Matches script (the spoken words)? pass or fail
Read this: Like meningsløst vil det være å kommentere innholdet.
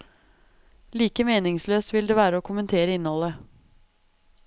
pass